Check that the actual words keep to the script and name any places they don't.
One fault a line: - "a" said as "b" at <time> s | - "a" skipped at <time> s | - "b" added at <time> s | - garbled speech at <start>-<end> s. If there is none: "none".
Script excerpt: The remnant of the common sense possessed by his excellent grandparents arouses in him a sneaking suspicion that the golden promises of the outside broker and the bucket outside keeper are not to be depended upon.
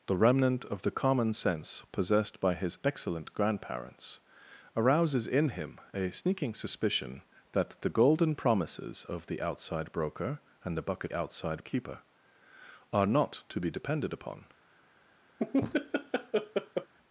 none